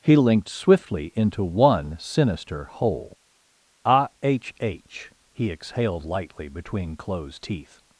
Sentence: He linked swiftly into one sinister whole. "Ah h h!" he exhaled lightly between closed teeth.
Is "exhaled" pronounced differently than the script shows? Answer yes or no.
no